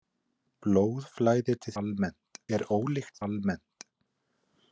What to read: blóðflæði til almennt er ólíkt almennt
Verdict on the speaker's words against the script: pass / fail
pass